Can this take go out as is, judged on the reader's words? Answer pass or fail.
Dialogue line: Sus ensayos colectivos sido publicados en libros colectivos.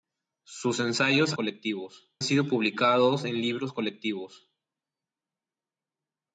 pass